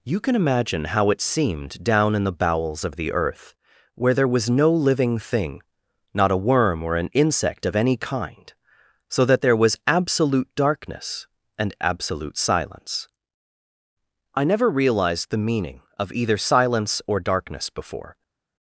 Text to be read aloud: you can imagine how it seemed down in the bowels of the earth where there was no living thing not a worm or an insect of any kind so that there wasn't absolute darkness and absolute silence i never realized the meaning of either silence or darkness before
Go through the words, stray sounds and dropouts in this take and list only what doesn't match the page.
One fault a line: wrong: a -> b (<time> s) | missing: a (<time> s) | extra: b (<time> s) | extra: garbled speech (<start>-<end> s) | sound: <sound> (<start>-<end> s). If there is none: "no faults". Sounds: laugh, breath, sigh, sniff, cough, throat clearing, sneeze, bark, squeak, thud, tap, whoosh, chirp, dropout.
wrong: wasn't -> was (9.6 s)